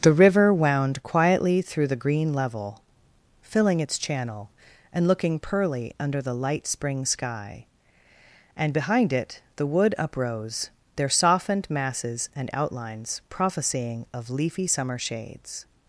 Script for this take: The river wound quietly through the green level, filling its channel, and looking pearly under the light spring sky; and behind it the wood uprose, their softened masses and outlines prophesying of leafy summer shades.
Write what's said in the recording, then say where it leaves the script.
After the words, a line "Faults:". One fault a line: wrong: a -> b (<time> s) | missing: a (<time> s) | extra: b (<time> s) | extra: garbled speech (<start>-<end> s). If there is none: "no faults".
The river wound quietly through the green level, filling its channel, and looking pearly under the light spring sky; and behind it the wood uprose, their softened masses and outlines prophesying of leafy summer shades.
Faults:
no faults